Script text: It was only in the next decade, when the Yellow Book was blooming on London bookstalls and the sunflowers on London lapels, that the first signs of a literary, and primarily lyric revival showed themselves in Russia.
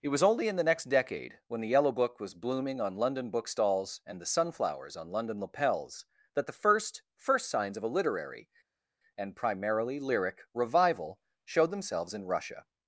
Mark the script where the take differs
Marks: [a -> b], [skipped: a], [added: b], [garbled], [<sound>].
It was only in the next decade, when the Yellow Book was blooming on London bookstalls and the sunflowers on London lapels, that the first [added: first] signs of a literary, and primarily lyric revival showed themselves in Russia.